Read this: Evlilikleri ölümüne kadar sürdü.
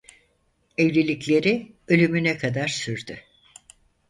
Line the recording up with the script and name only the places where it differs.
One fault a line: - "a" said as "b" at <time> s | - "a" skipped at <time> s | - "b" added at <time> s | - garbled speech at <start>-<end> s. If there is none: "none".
none